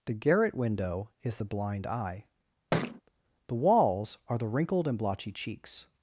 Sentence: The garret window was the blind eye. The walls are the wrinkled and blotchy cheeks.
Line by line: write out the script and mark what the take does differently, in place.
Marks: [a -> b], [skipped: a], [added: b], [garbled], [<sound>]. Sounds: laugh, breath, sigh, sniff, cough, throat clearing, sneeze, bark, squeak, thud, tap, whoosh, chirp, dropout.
The garret window [was -> is] the blind eye. [thud] The walls are the wrinkled and blotchy cheeks.